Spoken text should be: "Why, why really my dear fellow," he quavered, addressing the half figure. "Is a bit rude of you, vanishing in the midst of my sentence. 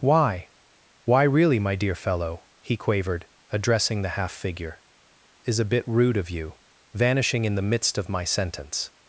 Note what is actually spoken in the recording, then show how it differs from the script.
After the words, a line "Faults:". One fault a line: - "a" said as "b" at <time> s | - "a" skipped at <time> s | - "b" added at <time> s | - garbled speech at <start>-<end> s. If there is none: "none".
"Why, why really my dear fellow," he quavered, addressing the half figure. "Is a bit rude of you, vanishing in the midst of my sentence.
Faults:
none